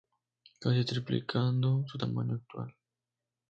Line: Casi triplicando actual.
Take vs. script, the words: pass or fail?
fail